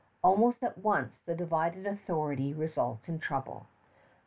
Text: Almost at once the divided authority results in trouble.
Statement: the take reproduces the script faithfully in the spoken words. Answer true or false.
true